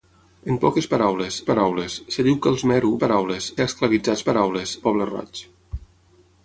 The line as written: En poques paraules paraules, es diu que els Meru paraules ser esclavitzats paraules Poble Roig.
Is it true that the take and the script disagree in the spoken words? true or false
false